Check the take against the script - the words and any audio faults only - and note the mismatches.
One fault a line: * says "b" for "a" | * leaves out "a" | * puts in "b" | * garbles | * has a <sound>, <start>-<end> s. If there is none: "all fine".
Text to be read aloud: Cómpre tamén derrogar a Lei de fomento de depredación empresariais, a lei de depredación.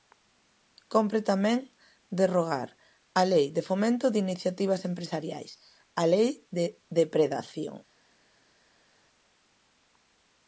* says "iniciativas" for "depredación"